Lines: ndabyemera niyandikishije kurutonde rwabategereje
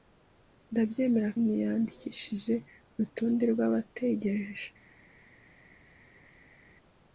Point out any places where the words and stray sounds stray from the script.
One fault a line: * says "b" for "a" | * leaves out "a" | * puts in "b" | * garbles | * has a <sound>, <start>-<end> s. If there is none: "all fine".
all fine